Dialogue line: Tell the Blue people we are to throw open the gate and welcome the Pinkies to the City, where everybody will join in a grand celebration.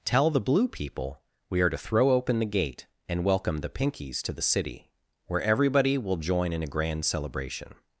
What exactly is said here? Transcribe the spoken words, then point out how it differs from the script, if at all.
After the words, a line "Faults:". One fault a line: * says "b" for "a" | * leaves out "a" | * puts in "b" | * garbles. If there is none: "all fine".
Tell the Blue people we are to throw open the gate and welcome the Pinkies to the City, where everybody will join in a grand celebration.
Faults:
all fine